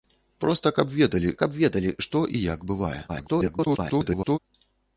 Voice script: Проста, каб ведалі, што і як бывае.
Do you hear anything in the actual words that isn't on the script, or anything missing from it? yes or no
yes